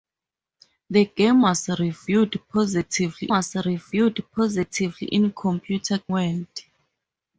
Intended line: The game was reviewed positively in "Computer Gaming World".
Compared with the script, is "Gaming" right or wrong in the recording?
wrong